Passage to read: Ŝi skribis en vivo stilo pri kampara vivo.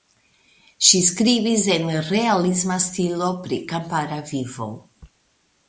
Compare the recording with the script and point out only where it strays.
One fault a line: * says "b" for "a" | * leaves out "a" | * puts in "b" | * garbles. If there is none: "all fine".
* says "realisma" for "vivo"